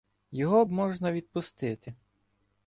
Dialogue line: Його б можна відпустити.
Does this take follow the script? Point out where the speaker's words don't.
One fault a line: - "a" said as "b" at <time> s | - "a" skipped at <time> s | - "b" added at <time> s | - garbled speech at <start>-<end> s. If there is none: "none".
none